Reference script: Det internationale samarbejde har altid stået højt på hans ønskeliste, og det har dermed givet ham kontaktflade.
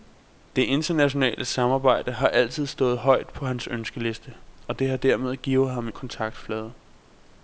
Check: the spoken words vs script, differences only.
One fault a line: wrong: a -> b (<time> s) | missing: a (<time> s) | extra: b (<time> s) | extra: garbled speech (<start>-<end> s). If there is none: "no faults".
no faults